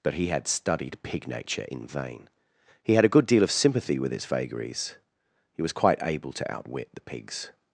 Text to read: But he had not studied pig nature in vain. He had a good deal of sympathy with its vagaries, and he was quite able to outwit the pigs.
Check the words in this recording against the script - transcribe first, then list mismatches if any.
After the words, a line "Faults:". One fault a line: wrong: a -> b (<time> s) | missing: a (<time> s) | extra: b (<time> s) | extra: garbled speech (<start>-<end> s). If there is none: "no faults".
But he had studied pig nature in vain. He had a good deal of sympathy with its vagaries, he was quite able to outwit the pigs.
Faults:
missing: not (0.5 s)
missing: and (5.0 s)